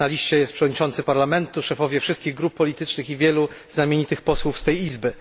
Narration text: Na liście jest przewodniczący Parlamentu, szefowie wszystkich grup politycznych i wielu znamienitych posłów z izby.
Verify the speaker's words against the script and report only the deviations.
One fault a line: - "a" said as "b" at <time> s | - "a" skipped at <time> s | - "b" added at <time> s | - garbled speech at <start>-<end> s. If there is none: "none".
- "tej" added at 4.6 s